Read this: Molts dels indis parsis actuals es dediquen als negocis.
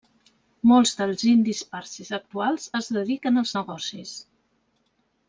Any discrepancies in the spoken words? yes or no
no